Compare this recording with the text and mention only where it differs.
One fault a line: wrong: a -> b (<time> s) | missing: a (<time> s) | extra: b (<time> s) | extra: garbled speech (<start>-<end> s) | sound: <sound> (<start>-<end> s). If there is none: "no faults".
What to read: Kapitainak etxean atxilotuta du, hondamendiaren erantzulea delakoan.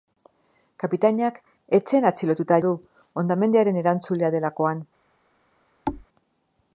sound: thud (5.9-6.1 s)